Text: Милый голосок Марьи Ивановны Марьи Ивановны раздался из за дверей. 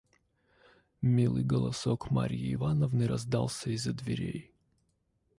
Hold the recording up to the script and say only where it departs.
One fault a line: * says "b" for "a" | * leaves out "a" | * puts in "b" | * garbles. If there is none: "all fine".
* leaves out "Марьи Ивановны"